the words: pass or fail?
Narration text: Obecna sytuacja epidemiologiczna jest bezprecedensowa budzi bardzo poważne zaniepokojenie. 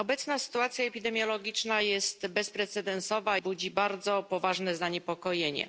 pass